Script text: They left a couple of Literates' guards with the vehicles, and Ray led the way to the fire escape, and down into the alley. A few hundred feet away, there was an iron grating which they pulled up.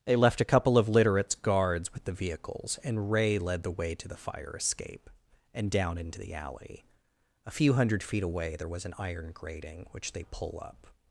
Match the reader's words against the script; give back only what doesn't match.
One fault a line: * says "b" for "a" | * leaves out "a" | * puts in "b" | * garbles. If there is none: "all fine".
* says "pull" for "pulled"